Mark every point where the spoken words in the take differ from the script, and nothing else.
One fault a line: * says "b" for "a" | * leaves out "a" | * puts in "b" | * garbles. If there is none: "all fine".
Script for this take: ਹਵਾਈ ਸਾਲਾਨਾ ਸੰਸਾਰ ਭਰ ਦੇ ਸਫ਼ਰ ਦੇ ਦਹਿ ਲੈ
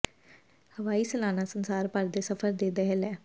all fine